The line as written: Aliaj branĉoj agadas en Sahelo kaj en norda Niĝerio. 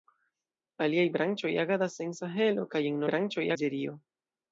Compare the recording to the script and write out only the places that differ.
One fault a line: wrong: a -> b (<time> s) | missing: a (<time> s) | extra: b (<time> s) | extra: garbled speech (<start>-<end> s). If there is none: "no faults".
wrong: norda -> branĉoj (3.1 s)